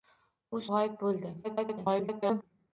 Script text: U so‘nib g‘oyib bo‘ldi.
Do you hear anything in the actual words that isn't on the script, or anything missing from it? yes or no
yes